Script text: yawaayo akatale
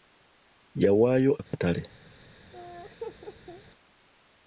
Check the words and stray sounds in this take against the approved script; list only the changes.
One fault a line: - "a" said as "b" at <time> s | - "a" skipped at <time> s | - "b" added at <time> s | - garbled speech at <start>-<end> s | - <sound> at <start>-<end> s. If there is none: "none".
- dropout at 1.5-1.5 s
- laugh at 2.5-3.6 s